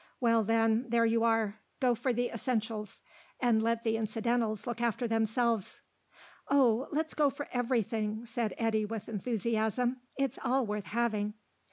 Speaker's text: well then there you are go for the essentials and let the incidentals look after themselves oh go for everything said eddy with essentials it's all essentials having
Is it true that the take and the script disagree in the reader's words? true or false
true